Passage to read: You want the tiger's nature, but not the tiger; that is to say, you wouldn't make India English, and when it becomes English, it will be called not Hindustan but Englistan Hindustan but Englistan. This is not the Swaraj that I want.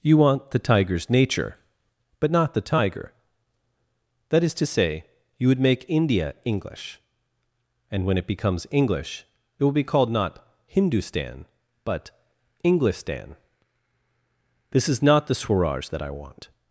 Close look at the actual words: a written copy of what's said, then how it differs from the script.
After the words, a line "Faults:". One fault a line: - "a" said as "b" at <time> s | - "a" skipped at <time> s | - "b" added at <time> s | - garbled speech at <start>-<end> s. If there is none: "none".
You want the tiger's nature, but not the tiger; that is to say, you would make India English, and when it becomes English, it will be called not Hindustan but Englistan. This is not the Swaraj that I want.
Faults:
- "wouldn't" said as "would" at 5.5 s
- "Hindustan but Englistan" skipped at 13.4 s